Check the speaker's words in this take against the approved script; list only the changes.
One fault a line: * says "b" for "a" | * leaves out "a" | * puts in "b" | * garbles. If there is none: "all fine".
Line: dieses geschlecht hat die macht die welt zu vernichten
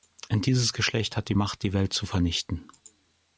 all fine